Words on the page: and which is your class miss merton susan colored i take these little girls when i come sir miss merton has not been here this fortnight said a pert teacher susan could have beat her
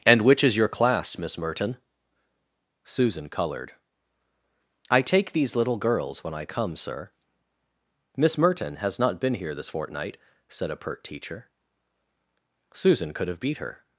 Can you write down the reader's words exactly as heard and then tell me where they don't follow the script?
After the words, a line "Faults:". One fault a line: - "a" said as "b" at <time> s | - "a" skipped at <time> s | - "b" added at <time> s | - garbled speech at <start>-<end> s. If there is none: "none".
and which is your class miss merton susan colored i take these little girls when i come sir miss merton has not been here this fortnight said a pert teacher susan could have beat her
Faults:
none